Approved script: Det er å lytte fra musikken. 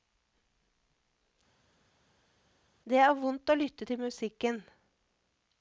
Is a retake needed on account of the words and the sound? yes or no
yes